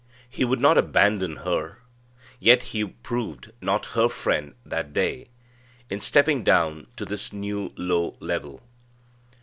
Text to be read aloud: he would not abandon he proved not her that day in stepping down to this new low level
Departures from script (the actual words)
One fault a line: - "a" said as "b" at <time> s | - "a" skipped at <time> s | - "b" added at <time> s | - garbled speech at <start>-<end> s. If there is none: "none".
- "her yet" added at 1.4 s
- "friend" added at 4.1 s